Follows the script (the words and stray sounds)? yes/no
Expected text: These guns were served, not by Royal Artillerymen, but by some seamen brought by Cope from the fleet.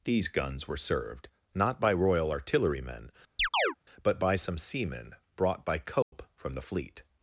no